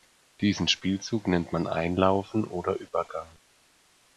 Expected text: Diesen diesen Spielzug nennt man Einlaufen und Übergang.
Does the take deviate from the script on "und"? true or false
true